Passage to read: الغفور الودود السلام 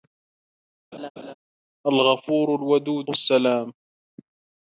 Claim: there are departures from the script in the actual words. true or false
false